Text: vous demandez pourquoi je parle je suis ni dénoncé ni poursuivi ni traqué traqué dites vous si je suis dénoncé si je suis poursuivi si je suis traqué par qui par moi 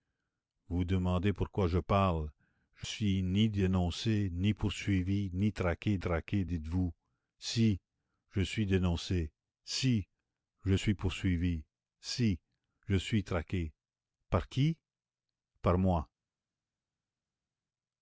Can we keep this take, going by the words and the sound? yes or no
yes